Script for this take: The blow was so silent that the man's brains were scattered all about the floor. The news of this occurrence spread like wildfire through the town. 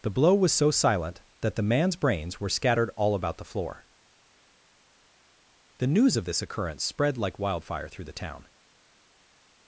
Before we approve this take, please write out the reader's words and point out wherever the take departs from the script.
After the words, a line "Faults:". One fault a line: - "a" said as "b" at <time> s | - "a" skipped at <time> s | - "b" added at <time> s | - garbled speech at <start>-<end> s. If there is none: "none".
The blow was so silent that the man's brains were scattered all about the floor. The news of this occurrence spread like wildfire through the town.
Faults:
none